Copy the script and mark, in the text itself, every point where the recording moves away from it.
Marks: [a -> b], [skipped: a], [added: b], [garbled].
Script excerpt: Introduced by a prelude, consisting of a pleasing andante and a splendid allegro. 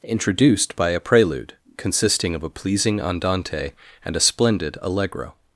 Introduced by a prelude, consisting of a pleasing andante and a splendid allegro.